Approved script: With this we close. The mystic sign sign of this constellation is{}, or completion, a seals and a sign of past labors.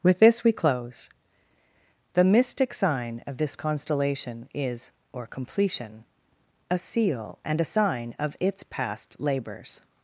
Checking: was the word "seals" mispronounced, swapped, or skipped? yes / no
yes